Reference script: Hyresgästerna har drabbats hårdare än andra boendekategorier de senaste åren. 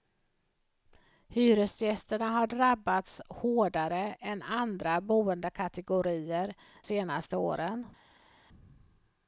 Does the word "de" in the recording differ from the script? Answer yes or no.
yes